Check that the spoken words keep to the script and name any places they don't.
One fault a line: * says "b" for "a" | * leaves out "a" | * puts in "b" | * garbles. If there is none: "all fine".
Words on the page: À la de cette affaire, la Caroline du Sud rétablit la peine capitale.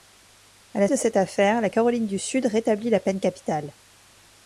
all fine